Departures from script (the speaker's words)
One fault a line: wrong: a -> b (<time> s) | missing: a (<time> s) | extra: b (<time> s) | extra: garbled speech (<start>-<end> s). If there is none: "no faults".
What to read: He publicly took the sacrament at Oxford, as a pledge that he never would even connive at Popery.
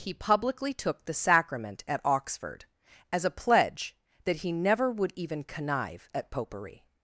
no faults